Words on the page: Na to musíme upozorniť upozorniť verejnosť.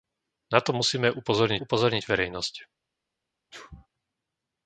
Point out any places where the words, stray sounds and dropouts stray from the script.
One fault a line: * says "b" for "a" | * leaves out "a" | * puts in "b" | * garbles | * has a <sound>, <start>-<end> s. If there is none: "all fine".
* has a sneeze, 3.5-3.9 s